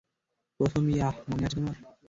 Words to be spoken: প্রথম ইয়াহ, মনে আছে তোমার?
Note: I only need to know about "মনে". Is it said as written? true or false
true